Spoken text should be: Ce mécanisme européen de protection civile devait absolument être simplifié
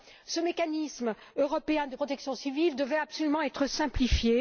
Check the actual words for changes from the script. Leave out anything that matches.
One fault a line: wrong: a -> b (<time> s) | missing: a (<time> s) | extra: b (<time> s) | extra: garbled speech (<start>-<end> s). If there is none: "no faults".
no faults